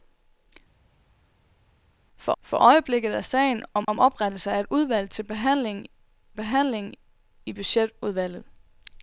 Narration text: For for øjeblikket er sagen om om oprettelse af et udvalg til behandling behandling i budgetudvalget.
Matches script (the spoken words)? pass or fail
pass